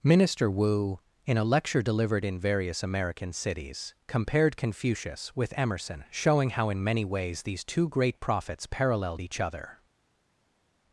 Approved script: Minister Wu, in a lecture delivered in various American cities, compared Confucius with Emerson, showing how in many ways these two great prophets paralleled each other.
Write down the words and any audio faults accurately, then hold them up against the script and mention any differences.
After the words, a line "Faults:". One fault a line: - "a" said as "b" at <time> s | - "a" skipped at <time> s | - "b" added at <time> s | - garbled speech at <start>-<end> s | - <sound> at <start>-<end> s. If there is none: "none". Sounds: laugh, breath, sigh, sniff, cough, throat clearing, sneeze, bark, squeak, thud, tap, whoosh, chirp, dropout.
Minister Wu, in a lecture delivered in various American cities, compared Confucius with Emerson, showing how in many ways these two great prophets paralleled each other.
Faults:
none